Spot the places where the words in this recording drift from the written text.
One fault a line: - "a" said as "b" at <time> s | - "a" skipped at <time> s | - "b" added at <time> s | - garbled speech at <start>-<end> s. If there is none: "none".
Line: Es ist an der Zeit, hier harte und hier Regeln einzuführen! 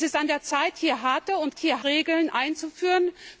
none